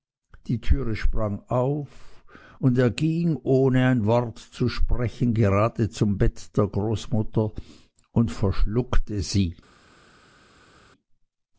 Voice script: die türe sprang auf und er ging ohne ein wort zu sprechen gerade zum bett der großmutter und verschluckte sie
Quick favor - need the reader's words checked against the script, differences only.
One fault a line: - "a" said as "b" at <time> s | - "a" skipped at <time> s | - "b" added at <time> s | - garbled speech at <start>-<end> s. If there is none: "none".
none